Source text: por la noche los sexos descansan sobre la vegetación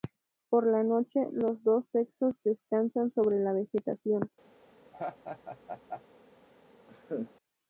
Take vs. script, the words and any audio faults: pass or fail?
fail